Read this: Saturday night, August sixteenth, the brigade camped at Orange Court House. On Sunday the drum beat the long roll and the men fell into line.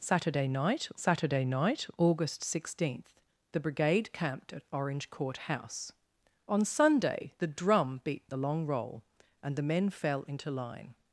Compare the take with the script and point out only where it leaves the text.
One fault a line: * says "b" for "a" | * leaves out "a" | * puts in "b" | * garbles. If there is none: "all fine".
* puts in "saturday night"